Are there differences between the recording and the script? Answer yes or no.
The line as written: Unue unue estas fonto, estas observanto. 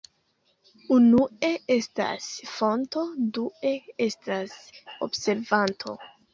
yes